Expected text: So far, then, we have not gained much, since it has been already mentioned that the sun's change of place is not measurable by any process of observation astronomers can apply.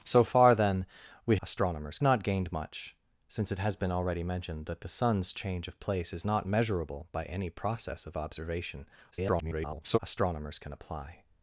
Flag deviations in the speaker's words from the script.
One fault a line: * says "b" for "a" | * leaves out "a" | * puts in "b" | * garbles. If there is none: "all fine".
* says "astronomers" for "have"
* garbles